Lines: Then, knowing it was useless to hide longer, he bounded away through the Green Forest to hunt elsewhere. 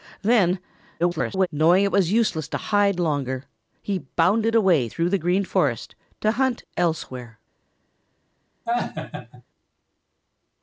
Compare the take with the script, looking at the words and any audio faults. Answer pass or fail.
fail